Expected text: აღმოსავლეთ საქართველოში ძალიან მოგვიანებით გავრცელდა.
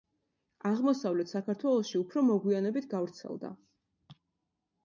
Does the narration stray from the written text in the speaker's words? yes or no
yes